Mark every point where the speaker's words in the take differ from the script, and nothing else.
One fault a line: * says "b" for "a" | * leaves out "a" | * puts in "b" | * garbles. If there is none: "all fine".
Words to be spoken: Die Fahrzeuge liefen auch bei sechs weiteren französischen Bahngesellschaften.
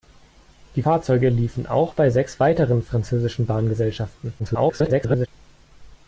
* garbles